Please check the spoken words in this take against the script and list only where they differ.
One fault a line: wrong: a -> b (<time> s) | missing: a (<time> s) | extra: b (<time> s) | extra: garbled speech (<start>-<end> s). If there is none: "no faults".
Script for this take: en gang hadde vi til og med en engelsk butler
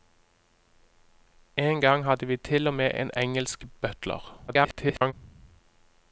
extra: garbled speech (4.5-5.1 s)